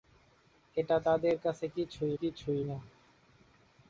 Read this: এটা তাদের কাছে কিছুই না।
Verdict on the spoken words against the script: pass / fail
fail